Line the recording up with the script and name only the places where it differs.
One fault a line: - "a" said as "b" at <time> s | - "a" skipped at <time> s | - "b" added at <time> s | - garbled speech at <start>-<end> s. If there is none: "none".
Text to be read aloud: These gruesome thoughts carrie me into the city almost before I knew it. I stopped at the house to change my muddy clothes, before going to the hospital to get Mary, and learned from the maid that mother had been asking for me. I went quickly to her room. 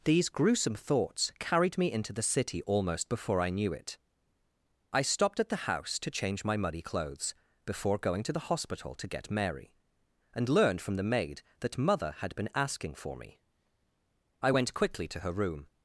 - "carrie" said as "carried" at 1.4 s